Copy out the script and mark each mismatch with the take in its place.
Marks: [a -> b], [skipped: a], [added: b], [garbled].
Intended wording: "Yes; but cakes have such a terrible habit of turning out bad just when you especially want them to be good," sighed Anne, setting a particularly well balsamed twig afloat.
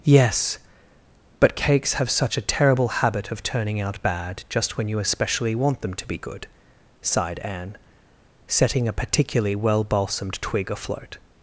"Yes; but cakes have such a terrible habit of turning out bad just when you especially want them to be good," sighed Anne, setting a particularly well balsamed twig afloat.